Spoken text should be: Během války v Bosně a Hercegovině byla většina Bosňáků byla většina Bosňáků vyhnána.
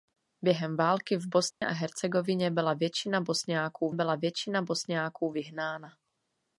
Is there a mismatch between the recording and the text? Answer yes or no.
no